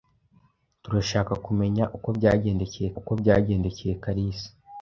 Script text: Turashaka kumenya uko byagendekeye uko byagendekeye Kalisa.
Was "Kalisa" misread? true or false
false